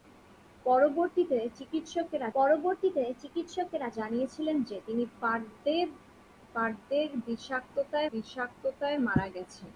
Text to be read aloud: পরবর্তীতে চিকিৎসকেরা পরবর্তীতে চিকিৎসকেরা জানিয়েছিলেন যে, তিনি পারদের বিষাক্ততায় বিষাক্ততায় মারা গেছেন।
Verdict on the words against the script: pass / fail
pass